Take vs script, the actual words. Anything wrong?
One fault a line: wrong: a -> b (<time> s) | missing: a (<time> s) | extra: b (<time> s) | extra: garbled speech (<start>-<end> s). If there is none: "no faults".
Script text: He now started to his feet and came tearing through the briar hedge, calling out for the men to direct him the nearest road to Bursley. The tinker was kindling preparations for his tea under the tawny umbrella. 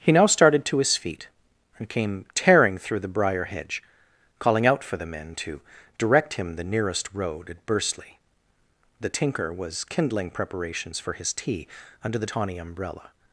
wrong: to -> at (7.5 s)